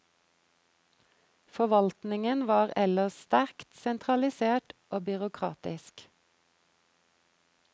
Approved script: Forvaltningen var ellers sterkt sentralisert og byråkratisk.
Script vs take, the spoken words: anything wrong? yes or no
no